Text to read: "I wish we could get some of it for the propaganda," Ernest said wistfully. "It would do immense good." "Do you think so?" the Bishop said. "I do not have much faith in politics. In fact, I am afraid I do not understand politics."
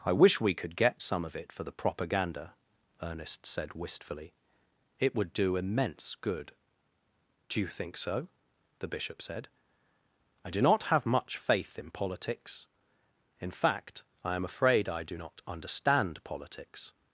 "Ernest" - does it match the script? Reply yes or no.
yes